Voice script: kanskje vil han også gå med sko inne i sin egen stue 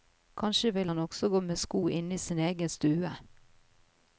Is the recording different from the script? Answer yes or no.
no